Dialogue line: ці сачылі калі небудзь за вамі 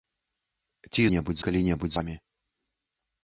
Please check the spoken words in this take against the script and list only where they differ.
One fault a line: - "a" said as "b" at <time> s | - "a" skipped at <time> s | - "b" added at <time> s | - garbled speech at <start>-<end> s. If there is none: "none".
- "сачылі" said as "небудзь" at 1.1 s
- "за" skipped at 2.0 s